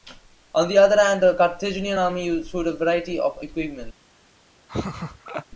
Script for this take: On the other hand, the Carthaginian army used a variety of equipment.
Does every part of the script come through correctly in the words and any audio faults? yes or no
no